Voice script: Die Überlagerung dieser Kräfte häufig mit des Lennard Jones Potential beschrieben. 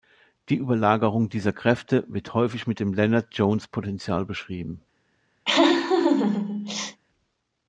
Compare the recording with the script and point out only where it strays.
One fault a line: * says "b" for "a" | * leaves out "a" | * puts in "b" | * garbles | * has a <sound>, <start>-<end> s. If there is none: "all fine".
* puts in "wird"
* says "dem" for "des"
* has a laugh, 5.4-7.0 s